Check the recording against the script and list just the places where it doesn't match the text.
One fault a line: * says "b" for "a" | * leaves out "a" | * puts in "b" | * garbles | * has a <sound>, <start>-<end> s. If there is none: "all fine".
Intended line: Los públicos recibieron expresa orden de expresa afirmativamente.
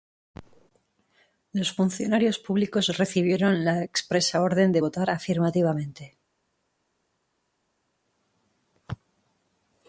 * puts in "funcionarios"
* puts in "la"
* says "votar" for "expresa"